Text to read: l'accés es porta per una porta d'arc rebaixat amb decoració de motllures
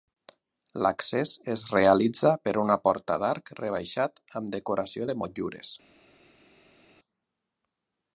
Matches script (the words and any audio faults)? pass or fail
fail